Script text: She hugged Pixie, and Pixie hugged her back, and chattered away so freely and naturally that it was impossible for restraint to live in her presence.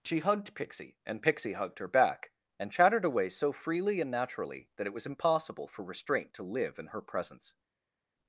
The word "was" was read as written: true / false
true